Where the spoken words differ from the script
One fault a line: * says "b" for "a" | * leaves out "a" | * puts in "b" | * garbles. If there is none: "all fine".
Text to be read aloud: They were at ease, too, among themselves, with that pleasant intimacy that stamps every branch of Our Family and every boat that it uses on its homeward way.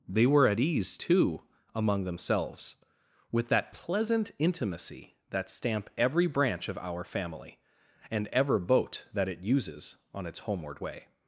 * says "stamp" for "stamps"
* says "ever" for "every"